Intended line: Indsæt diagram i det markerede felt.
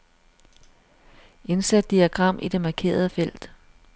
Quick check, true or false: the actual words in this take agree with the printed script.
true